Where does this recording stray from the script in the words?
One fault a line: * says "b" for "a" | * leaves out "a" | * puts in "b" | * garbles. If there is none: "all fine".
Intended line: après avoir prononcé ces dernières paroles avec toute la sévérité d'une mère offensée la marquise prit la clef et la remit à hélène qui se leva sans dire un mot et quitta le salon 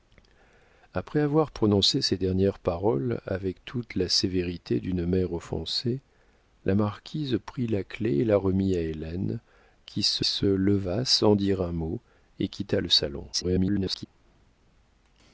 * puts in "se"
* garbles